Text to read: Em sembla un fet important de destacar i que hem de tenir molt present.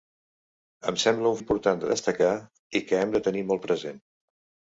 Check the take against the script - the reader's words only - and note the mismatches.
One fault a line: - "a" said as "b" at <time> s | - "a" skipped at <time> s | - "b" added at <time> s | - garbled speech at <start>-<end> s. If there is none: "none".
- "fet" skipped at 1.4 s